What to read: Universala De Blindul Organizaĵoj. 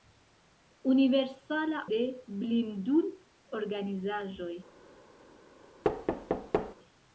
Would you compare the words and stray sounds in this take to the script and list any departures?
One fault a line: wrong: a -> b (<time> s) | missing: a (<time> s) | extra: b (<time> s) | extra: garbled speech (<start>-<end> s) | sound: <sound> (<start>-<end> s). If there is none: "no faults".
sound: thud (5.8-6.8 s)